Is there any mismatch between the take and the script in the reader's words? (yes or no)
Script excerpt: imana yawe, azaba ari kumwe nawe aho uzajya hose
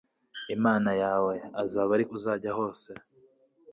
yes